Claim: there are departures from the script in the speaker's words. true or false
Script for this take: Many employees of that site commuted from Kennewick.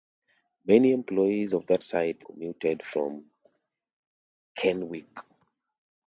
false